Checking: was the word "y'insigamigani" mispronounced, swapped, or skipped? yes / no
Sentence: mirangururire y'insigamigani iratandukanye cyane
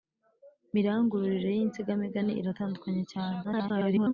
no